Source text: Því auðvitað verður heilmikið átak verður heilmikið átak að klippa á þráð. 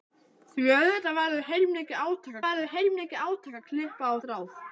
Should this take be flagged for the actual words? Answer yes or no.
no